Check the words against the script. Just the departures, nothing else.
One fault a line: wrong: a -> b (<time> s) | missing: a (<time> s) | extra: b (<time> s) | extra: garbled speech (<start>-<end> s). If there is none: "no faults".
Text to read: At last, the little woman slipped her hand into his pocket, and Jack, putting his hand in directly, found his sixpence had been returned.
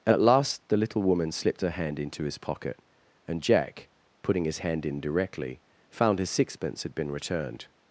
no faults